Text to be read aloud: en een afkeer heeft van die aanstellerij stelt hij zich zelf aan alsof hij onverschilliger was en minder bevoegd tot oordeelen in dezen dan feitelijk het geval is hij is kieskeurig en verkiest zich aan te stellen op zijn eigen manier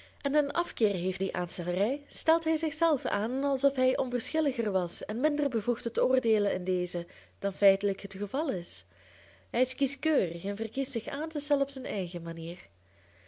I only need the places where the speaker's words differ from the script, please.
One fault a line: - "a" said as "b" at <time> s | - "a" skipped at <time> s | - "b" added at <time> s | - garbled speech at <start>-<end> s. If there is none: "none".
- "van" skipped at 1.2 s